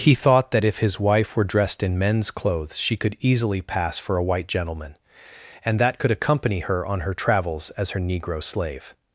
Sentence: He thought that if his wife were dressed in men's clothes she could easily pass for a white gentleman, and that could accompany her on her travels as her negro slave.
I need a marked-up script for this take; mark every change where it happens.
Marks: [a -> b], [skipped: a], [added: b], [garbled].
He thought that if his wife were dressed in men's clothes she could easily pass for a white gentleman, and that could accompany her on her travels as her negro slave.